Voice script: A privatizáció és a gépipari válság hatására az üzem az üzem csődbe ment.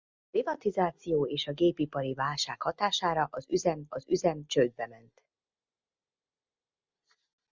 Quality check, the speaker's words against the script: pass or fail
pass